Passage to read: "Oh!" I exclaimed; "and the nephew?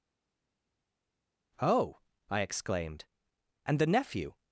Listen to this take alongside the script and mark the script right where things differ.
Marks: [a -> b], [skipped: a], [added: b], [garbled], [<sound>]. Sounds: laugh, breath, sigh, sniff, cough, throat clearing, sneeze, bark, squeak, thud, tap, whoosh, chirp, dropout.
"Oh!" I exclaimed; "and the nephew?